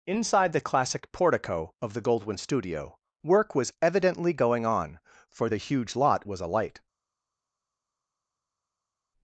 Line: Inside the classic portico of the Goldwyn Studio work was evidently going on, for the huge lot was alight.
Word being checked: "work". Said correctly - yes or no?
yes